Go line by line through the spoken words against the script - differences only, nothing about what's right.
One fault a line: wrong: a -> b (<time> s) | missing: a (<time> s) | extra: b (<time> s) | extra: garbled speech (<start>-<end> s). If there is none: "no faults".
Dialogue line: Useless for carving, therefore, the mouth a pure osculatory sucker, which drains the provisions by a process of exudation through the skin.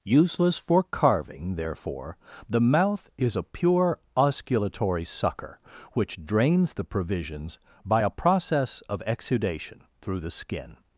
extra: is (3.2 s)